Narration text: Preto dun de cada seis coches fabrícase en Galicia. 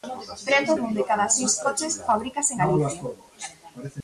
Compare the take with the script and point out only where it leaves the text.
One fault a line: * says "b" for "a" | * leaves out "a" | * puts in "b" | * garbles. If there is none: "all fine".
all fine